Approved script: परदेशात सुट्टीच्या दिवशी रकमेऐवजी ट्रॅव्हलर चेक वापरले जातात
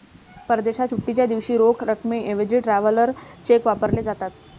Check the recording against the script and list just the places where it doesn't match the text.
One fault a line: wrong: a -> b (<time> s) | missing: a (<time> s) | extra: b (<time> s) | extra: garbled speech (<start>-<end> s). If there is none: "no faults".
extra: रोख (1.6 s)